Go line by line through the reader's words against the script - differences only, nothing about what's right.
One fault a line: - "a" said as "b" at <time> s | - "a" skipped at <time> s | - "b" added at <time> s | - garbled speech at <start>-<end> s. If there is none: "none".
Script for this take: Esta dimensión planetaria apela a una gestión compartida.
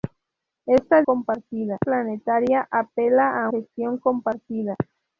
- "dimensión" said as "compartida" at 1.0 s
- "una" skipped at 3.5 s